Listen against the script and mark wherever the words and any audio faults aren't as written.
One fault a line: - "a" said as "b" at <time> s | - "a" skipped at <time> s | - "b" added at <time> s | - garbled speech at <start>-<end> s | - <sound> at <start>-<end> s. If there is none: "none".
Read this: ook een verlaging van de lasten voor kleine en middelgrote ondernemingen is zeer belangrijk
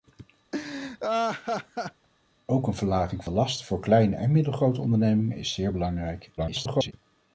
- laugh at 0.5-2.1 s
- "van" skipped at 3.2 s
- garbled speech at 6.4-6.9 s